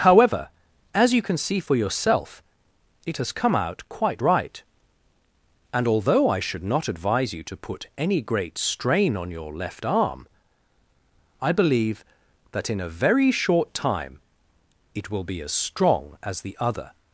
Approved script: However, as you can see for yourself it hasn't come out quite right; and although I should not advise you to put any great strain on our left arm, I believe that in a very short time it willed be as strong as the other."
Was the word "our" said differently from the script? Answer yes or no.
yes